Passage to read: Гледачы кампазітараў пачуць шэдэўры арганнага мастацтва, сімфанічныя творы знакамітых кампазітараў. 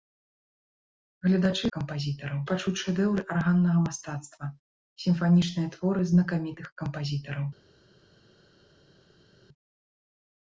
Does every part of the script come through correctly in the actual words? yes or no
yes